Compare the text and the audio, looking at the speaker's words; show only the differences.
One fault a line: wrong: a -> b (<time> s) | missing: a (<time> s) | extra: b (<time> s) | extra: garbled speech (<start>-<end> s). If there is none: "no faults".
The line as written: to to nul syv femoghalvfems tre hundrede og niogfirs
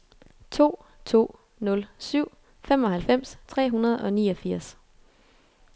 no faults